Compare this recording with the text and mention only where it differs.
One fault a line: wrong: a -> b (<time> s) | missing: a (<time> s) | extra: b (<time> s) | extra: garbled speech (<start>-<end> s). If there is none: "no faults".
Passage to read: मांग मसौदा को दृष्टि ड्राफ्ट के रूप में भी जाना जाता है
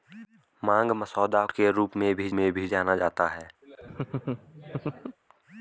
wrong: को दृष्टि ड्राफ्ट के रूप -> के रूप में भी (1.5 s)